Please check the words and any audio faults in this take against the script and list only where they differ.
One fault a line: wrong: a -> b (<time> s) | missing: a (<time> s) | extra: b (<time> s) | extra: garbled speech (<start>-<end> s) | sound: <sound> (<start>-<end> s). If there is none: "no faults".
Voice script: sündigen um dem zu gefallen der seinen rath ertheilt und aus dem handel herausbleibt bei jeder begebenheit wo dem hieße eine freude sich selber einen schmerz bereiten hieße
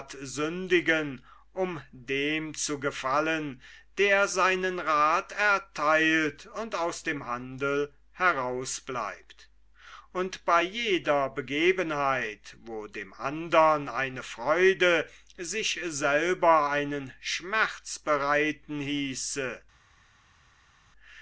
extra: und (10.1 s)
wrong: hieße -> andern (13.1 s)